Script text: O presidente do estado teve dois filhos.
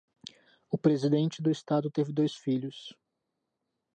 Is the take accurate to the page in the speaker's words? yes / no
yes